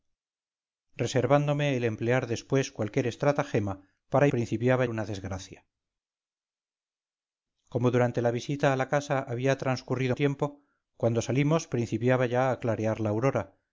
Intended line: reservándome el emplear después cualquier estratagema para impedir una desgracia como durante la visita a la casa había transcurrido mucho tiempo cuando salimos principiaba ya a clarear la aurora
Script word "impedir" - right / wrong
wrong